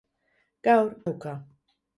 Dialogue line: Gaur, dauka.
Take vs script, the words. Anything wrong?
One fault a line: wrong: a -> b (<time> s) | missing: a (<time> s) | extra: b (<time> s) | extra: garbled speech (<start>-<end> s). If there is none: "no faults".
no faults